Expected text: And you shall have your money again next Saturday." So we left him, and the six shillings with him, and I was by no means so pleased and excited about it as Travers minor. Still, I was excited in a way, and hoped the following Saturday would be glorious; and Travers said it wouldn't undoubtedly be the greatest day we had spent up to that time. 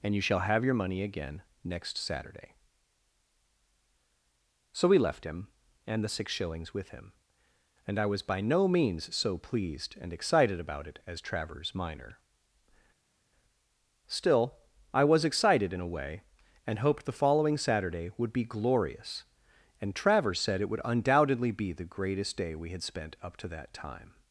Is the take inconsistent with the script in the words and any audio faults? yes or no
yes